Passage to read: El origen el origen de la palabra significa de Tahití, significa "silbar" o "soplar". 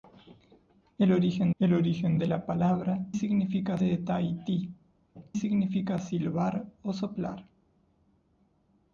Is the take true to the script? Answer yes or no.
yes